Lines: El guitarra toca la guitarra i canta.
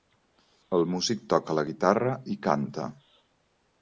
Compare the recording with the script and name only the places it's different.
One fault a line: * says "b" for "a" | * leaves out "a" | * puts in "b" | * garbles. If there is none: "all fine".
* says "músic" for "guitarra"